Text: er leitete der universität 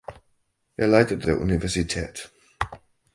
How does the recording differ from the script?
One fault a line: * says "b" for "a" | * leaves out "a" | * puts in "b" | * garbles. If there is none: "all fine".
all fine